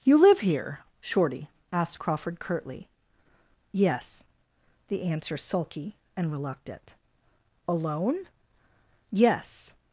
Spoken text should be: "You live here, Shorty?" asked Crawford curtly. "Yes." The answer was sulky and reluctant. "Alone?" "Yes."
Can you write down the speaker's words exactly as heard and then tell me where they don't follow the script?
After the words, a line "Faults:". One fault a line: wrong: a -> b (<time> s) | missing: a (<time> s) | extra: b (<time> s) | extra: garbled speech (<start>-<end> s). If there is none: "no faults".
"You live here, Shorty?" asked Crawford curtly. "Yes." The answer sulky and reluctant. "Alone?" "Yes."
Faults:
missing: was (5.4 s)